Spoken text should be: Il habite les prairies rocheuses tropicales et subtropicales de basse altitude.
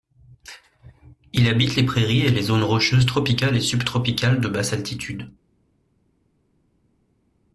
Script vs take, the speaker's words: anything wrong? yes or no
yes